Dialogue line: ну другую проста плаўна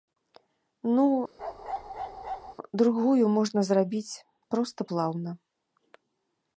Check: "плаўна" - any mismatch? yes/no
no